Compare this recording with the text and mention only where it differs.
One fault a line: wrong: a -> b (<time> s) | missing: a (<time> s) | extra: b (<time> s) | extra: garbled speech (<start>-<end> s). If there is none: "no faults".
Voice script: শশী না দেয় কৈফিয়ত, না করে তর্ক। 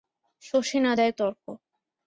missing: কৈফিয়ত না করে (1.1 s)